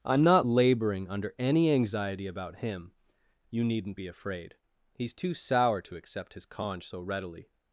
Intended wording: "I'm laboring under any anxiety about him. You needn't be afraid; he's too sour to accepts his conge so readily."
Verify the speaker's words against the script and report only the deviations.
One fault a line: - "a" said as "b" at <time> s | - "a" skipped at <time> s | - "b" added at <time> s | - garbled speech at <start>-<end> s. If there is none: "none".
- "not" added at 0.2 s
- "accepts" said as "accept" at 6.0 s